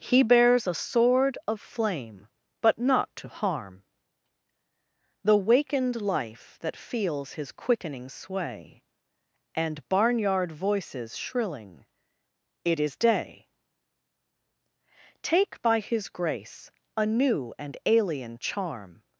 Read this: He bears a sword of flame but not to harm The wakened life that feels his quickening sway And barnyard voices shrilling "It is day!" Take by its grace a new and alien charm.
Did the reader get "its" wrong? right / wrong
wrong